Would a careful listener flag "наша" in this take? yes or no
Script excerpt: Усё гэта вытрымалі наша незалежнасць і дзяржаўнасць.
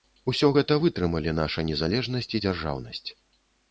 no